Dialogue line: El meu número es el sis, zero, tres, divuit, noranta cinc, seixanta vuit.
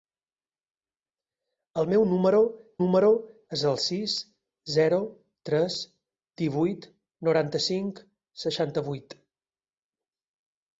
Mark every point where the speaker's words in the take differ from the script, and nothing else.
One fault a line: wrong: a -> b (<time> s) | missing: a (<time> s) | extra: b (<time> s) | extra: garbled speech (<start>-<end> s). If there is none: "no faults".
extra: número (2.8 s)